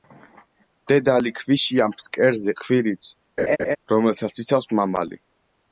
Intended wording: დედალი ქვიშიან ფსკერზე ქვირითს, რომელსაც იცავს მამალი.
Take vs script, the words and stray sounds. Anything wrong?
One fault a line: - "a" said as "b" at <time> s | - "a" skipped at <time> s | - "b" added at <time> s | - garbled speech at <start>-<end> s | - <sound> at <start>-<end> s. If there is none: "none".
- laugh at 3.4-3.8 s